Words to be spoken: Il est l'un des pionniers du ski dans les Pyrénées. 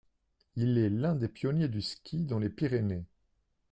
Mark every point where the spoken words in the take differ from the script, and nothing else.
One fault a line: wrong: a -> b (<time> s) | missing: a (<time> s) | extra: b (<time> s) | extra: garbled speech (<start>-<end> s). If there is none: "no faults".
no faults